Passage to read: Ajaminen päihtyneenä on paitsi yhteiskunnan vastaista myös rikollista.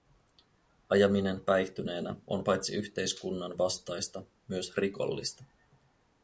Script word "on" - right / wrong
right